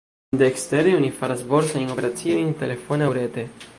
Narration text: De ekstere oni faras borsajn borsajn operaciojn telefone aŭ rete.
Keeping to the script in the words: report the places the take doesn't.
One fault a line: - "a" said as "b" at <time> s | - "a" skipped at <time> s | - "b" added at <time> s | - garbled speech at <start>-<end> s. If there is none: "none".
- "borsajn" skipped at 1.9 s